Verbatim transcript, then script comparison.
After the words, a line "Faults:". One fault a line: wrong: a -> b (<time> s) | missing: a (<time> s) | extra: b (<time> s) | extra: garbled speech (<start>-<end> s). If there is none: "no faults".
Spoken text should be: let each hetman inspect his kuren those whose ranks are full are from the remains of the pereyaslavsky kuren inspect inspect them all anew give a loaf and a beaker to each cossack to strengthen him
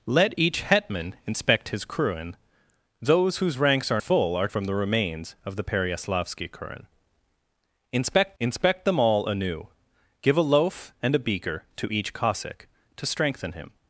let each hetman inspect his kuren those whose ranks are full are from the remains of the pereyaslavsky kuren inspect inspect them all anew give a loaf and a beaker to each cossack to strengthen him
Faults:
no faults